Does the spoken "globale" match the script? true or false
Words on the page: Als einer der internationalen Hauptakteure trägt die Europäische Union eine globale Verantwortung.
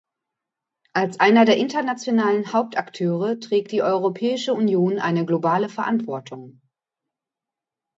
true